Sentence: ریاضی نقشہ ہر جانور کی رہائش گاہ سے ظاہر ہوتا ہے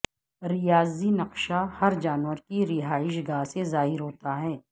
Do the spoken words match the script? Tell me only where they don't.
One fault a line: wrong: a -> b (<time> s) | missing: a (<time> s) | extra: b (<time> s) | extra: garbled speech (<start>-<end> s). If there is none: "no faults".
no faults